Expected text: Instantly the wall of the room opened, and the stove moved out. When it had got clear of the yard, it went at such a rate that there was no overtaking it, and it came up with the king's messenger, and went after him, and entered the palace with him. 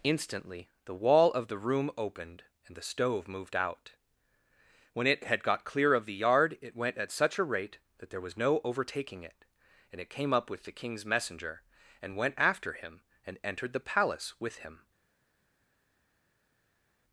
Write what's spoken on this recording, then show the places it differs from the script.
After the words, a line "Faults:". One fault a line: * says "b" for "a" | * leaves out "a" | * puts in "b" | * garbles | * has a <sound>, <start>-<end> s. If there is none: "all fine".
Instantly the wall of the room opened, and the stove moved out. When it had got clear of the yard, it went at such a rate that there was no overtaking it, and it came up with the king's messenger, and went after him, and entered the palace with him.
Faults:
all fine